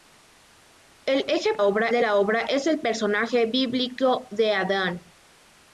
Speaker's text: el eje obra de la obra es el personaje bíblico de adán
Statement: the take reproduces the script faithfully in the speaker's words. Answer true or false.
true